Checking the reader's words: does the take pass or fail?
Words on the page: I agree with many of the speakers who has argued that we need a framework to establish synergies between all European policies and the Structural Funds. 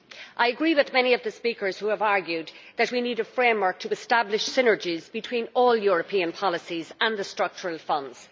fail